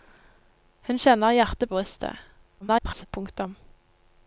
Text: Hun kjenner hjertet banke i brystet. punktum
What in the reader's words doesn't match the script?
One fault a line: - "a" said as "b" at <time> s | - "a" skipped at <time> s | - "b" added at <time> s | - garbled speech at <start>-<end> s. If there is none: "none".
- "banke" skipped at 1.7 s
- garbled speech at 2.6-3.1 s